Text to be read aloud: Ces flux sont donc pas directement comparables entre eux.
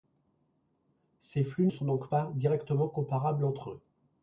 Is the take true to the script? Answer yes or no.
yes